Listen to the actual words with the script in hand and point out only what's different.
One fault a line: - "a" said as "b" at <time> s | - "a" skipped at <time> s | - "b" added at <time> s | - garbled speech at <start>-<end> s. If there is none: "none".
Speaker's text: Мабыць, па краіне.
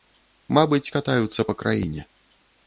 - "катаюцца" added at 0.9 s